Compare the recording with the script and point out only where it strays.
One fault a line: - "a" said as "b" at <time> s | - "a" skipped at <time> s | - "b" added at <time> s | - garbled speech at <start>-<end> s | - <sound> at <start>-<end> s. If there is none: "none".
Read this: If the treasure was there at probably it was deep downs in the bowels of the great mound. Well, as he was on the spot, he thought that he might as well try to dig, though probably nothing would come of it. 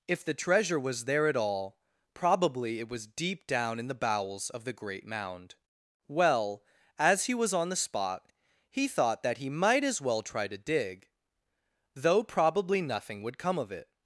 - "all" added at 1.4 s
- "downs" said as "down" at 3.5 s